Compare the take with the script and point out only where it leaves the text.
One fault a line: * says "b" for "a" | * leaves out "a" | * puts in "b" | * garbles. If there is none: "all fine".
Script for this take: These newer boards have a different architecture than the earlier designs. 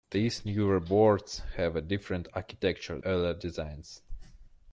* leaves out "than the"